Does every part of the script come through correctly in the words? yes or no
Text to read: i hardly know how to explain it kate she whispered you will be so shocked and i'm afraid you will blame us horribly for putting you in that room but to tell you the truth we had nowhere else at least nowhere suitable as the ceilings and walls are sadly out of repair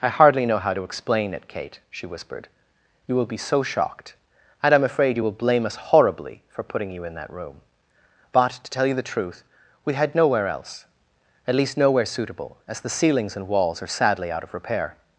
yes